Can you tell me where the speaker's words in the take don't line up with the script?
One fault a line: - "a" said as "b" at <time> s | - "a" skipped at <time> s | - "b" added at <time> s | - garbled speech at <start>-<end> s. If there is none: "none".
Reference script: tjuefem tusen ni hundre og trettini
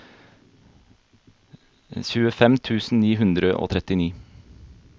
none